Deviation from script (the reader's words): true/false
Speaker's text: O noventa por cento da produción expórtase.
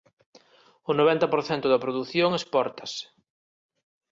false